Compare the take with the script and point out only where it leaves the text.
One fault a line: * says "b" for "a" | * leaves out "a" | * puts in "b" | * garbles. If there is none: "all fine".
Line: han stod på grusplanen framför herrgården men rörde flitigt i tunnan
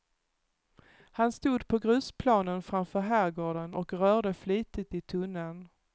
* says "och" for "men"